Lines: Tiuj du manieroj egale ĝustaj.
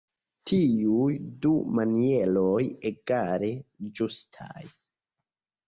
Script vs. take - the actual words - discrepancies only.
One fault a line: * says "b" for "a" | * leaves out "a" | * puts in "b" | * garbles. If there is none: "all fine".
all fine